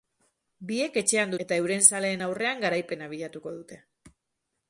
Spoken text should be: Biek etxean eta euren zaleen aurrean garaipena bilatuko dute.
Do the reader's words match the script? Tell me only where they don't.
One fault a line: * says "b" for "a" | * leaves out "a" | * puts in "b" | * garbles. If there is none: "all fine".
all fine